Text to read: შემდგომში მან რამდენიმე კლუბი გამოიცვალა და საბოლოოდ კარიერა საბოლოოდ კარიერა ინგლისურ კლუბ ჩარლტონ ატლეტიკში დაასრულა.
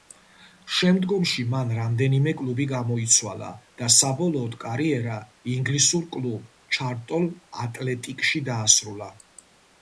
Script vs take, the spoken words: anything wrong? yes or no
yes